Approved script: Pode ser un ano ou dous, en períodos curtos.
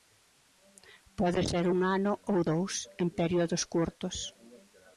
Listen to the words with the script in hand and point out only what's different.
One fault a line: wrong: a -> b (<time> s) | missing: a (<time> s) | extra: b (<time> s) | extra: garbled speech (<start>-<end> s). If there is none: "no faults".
no faults